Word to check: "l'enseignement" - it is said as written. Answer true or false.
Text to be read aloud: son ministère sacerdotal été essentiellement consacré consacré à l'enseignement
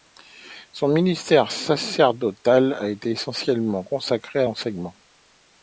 true